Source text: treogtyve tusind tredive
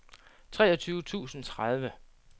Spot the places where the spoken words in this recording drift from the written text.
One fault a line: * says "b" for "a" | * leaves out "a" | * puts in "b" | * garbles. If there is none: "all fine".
all fine